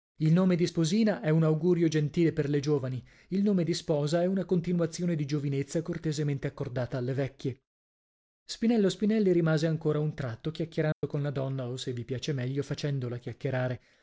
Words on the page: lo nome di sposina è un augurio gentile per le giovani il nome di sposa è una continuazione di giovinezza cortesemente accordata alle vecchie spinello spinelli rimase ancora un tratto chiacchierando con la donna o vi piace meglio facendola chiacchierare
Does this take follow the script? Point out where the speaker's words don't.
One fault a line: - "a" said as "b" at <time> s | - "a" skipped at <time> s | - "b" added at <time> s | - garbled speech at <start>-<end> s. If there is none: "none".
- "lo" said as "il" at 0.2 s
- "se" added at 11.8 s